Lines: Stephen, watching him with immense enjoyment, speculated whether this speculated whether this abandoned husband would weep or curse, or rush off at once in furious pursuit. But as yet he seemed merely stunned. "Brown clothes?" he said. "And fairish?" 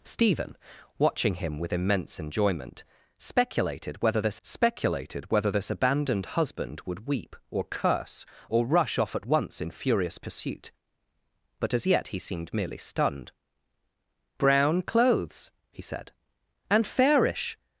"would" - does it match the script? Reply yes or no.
yes